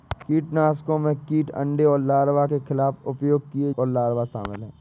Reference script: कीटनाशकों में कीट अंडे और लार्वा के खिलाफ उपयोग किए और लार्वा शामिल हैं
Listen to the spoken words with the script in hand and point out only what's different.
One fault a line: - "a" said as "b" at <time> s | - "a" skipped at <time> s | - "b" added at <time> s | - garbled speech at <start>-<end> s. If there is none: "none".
none